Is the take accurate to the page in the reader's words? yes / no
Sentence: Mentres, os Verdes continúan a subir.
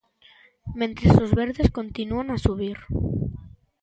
yes